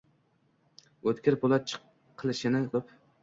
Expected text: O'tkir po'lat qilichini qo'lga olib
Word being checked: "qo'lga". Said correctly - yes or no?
no